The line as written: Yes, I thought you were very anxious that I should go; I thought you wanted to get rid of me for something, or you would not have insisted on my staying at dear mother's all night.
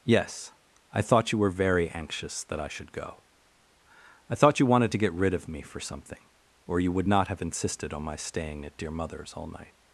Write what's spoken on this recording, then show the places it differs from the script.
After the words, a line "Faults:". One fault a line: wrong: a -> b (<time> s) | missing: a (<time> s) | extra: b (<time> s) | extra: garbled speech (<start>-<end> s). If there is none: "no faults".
Yes, I thought you were very anxious that I should go; I thought you wanted to get rid of me for something, or you would not have insisted on my staying at dear mother's all night.
Faults:
no faults